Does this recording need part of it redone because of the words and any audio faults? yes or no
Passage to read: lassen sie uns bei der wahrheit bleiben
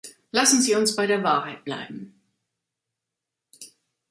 no